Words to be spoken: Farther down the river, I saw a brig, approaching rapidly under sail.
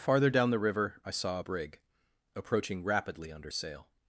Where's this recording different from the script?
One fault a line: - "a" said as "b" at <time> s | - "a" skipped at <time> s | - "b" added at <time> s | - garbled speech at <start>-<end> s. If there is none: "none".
none